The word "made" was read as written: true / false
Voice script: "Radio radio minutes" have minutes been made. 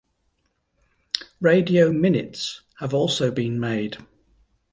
true